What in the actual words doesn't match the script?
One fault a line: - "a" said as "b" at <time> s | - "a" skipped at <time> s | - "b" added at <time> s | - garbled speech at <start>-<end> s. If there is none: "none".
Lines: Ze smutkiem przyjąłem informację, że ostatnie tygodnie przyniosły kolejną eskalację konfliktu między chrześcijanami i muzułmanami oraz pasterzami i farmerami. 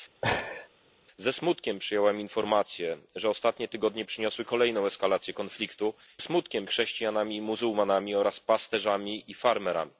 - "między" said as "smutkiem" at 6.2 s